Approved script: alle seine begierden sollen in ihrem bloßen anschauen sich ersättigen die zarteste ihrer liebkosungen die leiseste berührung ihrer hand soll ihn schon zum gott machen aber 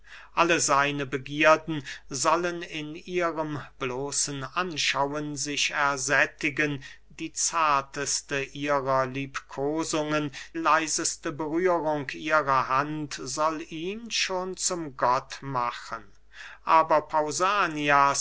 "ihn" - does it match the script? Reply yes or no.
yes